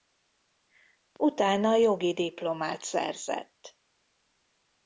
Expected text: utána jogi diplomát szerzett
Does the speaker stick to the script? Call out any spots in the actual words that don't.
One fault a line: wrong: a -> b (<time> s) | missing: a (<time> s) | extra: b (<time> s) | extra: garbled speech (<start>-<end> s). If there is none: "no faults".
no faults